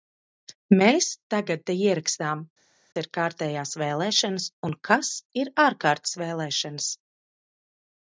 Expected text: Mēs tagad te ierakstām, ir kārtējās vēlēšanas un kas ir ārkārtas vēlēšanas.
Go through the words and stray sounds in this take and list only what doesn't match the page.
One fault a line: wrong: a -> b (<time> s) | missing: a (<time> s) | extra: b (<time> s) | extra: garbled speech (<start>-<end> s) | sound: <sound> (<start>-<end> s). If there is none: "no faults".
no faults